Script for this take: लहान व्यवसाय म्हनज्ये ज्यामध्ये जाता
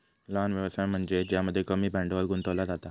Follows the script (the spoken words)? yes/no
no